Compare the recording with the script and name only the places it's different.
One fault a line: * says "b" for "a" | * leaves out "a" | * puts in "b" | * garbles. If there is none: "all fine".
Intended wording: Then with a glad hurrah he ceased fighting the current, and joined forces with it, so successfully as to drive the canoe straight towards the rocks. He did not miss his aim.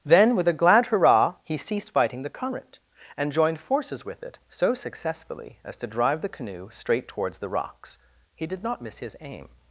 all fine